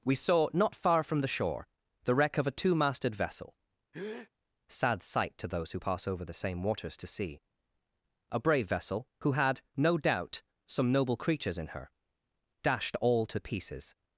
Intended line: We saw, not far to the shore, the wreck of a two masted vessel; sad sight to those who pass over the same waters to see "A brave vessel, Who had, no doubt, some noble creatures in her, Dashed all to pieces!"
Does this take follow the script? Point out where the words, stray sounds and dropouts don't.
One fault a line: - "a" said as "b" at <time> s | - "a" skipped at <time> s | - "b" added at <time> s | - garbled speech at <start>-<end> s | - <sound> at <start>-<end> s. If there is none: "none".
- "to" said as "from" at 1.0 s
- breath at 3.9-4.3 s